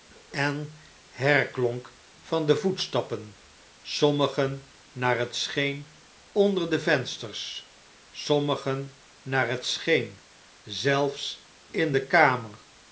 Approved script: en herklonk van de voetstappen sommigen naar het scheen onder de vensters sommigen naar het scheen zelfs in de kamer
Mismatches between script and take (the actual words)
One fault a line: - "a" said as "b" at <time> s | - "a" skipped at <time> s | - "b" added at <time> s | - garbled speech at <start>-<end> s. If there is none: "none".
none